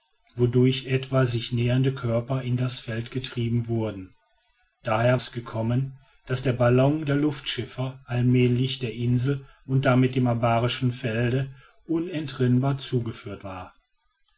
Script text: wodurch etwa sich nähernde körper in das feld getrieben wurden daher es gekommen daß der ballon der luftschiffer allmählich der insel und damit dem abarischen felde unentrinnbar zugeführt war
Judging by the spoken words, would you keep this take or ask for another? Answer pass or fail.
pass